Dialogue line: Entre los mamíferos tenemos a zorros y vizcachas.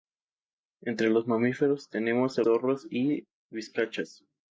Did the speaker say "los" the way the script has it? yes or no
yes